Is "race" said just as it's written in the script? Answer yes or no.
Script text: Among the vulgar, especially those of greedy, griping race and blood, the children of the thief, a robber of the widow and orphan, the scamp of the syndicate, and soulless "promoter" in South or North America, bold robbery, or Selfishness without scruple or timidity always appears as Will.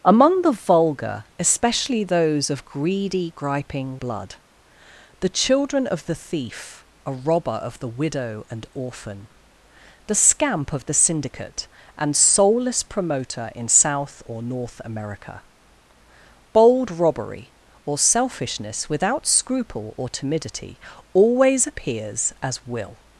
no